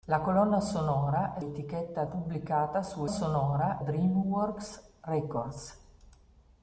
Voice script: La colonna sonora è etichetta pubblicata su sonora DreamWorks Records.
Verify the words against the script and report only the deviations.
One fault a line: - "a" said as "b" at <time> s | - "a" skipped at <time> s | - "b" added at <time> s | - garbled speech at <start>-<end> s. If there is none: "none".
none